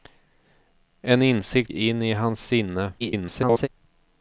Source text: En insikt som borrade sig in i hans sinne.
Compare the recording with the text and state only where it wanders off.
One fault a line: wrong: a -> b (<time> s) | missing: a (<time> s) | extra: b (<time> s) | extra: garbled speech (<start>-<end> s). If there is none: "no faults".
missing: som borrade sig (1.7 s)
extra: garbled speech (3.0-3.7 s)